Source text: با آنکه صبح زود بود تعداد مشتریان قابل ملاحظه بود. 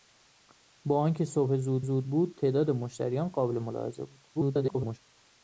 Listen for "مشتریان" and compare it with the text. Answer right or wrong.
right